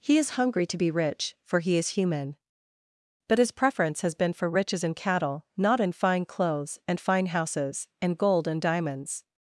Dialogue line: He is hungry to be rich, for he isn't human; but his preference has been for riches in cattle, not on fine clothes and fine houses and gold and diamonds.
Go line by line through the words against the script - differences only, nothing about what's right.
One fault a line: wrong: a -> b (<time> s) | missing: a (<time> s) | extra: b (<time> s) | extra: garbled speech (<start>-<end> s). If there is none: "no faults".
wrong: isn't -> is (1.8 s)
wrong: on -> in (5.8 s)